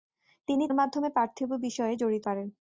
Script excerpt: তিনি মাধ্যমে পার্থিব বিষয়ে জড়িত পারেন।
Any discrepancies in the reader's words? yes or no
no